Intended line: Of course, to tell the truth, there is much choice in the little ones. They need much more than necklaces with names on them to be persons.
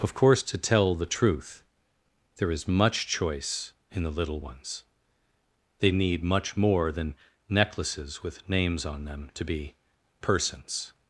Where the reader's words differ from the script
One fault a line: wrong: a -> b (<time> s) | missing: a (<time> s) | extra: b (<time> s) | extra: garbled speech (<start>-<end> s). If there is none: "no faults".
no faults